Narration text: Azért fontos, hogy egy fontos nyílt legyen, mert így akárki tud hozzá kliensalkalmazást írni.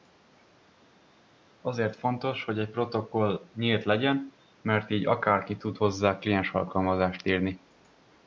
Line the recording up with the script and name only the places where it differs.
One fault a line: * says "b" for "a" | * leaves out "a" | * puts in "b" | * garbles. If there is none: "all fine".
* says "protokoll" for "fontos"